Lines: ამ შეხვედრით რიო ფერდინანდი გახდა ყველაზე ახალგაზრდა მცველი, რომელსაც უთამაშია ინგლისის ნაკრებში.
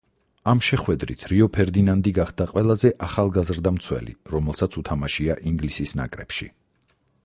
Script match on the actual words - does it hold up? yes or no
yes